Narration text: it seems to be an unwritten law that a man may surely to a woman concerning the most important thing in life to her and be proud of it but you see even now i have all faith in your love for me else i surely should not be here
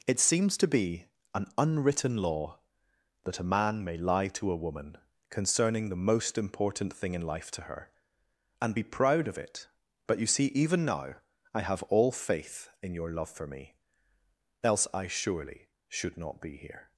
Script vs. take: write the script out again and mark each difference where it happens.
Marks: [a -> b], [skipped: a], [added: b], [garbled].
it seems to be an unwritten law that a man may [surely -> lie] to a woman concerning the most important thing in life to her and be proud of it but you see even now i have all faith in your love for me else i surely should not be here